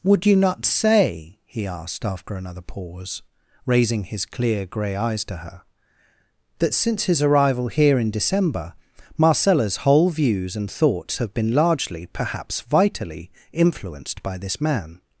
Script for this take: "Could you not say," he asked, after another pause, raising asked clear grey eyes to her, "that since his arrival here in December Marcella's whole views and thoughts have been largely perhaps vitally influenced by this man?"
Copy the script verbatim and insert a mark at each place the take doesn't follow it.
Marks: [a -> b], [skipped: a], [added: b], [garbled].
["Could -> Would] you not say," he asked, after another pause, raising [asked -> his] clear grey eyes to her, "that since his arrival here in December Marcella's whole views and thoughts have been largely perhaps vitally influenced by this man?"